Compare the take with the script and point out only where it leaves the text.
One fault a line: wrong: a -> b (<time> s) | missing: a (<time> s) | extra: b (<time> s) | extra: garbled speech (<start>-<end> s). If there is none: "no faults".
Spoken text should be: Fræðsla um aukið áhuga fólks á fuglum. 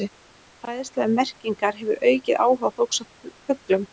extra: merkingar hefur (1.2 s)